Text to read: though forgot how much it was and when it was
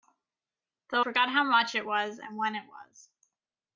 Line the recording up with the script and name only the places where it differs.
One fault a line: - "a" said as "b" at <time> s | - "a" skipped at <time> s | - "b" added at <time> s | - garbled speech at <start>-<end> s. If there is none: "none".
none